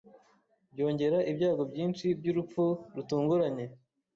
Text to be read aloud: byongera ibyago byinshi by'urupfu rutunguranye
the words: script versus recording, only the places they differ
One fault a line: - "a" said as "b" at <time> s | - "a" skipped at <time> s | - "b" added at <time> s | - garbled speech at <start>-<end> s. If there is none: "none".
none